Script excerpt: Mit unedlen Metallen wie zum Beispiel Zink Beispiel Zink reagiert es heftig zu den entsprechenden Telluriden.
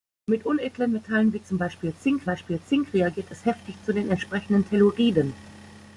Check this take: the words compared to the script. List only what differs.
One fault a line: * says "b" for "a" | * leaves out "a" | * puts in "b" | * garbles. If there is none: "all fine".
all fine